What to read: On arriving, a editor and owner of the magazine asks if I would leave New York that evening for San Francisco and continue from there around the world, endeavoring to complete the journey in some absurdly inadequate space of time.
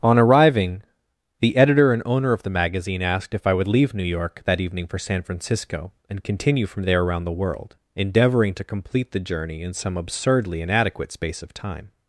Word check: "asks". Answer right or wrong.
wrong